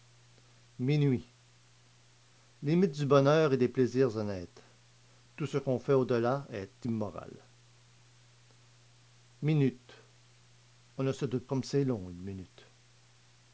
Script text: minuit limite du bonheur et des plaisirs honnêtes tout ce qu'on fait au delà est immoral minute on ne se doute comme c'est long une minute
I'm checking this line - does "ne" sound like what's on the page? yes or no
yes